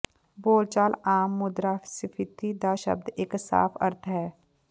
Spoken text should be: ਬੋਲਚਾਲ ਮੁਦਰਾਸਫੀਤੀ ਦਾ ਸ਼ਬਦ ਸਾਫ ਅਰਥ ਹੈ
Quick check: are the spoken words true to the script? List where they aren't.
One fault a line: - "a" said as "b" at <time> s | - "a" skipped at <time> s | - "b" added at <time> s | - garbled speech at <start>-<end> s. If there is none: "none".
- "ਆਮ" added at 1.1 s
- "ਇੱਕ" added at 3.2 s